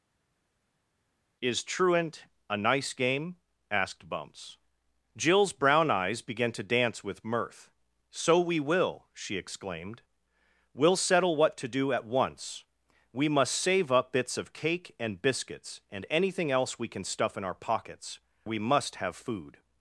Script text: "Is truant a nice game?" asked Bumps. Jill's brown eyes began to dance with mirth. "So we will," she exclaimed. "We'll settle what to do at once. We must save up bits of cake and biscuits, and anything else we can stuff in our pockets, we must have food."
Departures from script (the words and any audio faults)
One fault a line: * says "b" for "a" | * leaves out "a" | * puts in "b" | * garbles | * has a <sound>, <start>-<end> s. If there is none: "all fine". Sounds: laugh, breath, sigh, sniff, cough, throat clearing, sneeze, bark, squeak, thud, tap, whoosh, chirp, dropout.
all fine